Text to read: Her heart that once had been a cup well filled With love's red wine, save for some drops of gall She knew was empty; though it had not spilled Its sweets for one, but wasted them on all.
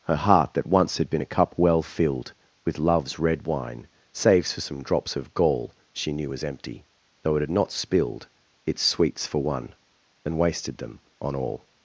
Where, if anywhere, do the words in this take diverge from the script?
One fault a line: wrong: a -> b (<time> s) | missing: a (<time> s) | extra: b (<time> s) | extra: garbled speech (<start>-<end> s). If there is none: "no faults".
wrong: save -> saves (4.1 s)
wrong: but -> and (10.2 s)